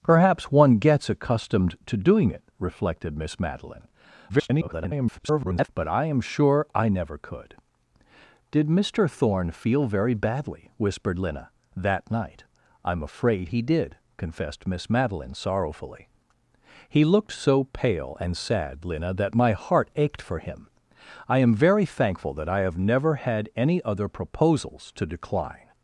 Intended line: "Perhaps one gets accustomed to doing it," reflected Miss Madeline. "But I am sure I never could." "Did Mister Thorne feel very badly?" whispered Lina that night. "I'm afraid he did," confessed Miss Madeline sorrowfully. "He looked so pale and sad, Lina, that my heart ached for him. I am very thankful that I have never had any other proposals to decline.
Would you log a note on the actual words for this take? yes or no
yes